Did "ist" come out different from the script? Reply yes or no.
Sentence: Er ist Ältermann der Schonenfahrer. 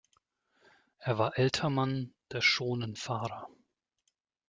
yes